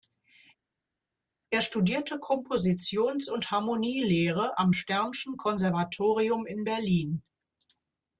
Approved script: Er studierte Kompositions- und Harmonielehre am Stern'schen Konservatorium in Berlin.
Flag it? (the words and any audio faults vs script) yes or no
no